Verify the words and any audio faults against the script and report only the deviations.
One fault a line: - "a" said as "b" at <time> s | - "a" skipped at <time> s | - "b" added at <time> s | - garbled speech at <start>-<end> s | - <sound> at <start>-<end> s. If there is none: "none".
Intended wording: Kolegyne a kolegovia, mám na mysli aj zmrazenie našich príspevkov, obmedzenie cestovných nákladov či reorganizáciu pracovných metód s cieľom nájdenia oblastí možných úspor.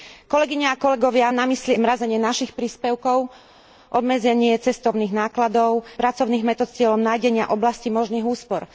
- "mám" skipped at 1.3 s
- "aj" skipped at 1.7 s
- "či reorganizáciu" skipped at 5.8 s